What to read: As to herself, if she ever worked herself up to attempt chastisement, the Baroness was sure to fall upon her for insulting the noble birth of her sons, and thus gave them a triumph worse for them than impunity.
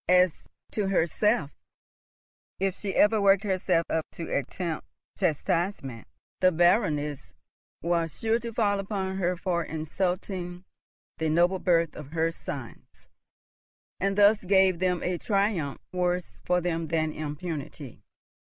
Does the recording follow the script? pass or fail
pass